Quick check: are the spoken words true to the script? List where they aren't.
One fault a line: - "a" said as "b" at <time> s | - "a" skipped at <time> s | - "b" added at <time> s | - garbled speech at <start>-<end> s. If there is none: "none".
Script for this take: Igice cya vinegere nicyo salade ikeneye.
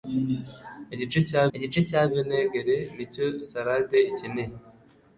- "igice cya" added at 1.6 s